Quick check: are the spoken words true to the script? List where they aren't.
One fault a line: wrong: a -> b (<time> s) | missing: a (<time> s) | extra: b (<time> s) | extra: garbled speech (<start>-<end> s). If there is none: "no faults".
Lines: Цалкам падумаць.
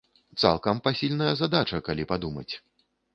extra: пасільная задача калі (0.9 s)